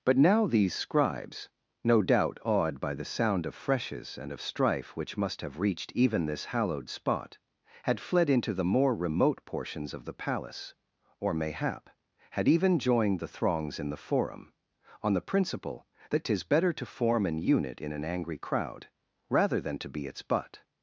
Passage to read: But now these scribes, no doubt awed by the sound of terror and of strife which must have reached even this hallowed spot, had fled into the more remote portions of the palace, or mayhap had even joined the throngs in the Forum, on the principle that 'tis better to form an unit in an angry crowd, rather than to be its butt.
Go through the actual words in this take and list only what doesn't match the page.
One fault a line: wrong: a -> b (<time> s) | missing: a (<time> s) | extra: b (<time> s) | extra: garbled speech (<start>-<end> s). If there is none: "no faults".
wrong: terror -> freshes (3.5 s)